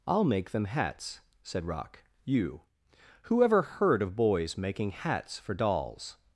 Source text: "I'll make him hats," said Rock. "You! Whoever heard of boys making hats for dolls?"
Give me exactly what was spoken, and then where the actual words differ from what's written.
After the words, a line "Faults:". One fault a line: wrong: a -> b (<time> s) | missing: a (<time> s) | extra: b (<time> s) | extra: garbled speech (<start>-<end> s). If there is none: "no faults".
"I'll make them hats," said Rock. "You! Whoever heard of boys making hats for dolls?"
Faults:
wrong: him -> them (0.5 s)